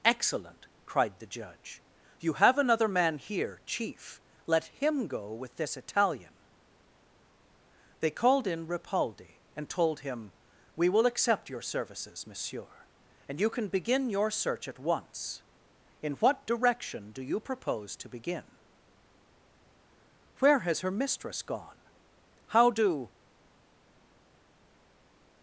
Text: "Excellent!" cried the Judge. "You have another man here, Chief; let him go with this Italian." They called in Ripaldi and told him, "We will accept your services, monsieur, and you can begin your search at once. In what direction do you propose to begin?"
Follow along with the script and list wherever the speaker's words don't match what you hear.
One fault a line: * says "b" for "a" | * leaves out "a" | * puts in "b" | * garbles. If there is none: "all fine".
* puts in "Where has her mistress gone How do"